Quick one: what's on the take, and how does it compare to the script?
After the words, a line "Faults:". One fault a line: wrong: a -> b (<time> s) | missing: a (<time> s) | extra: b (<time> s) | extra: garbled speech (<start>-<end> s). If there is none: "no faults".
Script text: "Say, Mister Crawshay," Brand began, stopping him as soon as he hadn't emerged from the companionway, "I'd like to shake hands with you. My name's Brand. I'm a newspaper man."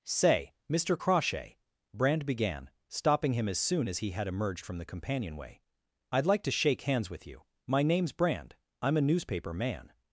"Say, Mister Crawshay," Brand began, stopping him as soon as he had emerged from the companionway, "I'd like to shake hands with you. My name's Brand. I'm a newspaper man."
Faults:
wrong: hadn't -> had (4.1 s)